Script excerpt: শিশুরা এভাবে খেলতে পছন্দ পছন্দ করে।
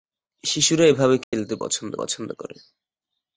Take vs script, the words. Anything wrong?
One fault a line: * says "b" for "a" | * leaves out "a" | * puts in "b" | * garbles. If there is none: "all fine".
all fine